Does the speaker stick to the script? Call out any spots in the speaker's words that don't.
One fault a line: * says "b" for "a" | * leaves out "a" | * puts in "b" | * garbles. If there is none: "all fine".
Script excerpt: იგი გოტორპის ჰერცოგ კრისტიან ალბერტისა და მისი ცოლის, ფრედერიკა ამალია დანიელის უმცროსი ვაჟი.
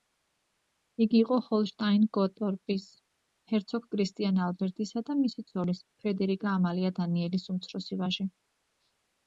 * puts in "იყო ჰოლშტაინ"